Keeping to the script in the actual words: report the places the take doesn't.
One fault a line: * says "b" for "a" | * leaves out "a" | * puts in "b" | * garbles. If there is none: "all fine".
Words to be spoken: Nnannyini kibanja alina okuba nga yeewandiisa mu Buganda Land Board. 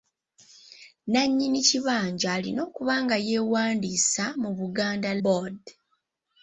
* leaves out "Land"